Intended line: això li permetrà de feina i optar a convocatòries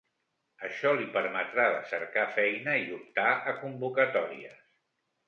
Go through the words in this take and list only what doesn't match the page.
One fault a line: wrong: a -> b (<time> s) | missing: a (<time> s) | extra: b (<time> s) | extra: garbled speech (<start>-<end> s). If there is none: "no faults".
extra: cercar (1.9 s)